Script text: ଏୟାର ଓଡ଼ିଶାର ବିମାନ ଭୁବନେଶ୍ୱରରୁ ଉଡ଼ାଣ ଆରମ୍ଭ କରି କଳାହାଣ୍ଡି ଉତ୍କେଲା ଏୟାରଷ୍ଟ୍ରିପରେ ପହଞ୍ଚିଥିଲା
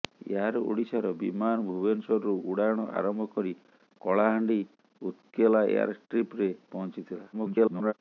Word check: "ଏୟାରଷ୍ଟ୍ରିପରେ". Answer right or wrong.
right